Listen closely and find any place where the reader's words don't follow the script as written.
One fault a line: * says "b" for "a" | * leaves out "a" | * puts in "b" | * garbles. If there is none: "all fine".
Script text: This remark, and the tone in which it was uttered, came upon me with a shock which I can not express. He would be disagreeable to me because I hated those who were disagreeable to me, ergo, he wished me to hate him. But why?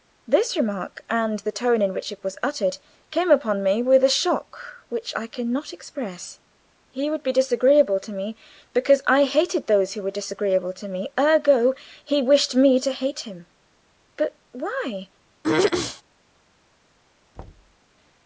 all fine